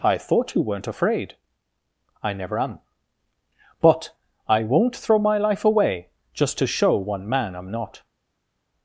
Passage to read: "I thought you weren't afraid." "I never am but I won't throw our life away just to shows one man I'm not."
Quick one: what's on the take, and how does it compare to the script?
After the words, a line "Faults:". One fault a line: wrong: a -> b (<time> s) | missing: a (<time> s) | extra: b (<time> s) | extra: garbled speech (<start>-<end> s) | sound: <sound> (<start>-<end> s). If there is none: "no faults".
"I thought you weren't afraid." "I never am but I won't throw my life away just to show one man I'm not."
Faults:
wrong: our -> my (5.2 s)
wrong: shows -> show (6.7 s)